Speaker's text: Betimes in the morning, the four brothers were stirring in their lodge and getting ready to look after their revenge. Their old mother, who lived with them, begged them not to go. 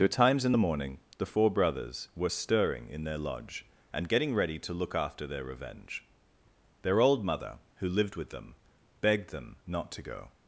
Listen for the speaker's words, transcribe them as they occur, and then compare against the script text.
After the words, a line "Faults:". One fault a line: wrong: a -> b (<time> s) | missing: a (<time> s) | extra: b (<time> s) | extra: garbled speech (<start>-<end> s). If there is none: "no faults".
Betimes in the morning, the four brothers were stirring in their lodge and getting ready to look after their revenge. Their old mother, who lived with them, begged them not to go.
Faults:
no faults